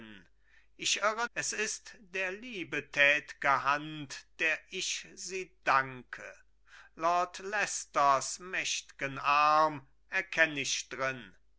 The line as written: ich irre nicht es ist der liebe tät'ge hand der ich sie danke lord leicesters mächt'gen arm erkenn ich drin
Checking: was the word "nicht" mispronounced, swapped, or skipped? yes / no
yes